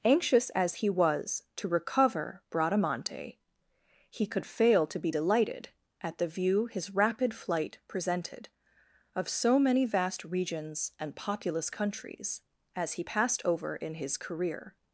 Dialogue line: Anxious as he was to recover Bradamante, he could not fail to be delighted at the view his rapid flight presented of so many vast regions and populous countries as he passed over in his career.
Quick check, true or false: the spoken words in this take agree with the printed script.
false